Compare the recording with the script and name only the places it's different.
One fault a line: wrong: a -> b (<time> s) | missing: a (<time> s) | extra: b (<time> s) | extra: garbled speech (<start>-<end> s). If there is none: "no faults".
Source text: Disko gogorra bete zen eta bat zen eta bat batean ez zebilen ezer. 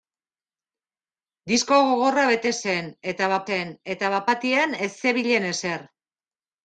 no faults